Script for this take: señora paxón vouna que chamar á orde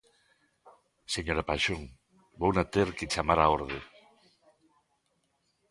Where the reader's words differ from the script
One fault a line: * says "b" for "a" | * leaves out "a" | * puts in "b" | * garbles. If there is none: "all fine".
* puts in "ter"